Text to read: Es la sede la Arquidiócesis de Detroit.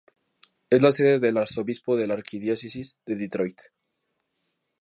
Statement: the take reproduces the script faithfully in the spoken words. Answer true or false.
false